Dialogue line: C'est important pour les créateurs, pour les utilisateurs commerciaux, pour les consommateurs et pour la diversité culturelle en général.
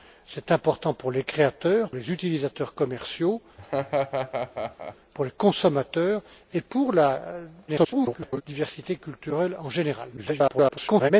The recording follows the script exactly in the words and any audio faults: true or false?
false